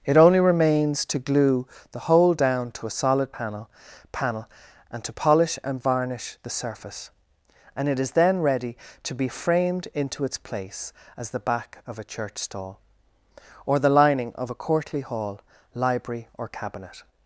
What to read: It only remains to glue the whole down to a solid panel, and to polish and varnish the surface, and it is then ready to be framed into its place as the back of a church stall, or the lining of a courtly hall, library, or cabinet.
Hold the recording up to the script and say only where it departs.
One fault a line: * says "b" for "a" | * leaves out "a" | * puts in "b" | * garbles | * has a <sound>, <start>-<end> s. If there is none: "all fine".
* puts in "panel"